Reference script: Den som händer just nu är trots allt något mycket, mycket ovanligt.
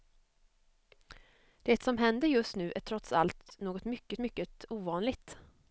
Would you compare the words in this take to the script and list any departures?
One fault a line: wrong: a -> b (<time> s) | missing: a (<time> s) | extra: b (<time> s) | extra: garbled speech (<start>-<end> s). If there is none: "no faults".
wrong: Den -> Det (1.6 s)